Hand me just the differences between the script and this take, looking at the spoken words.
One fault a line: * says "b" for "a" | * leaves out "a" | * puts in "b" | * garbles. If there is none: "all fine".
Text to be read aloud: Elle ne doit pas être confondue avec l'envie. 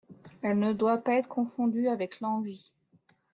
all fine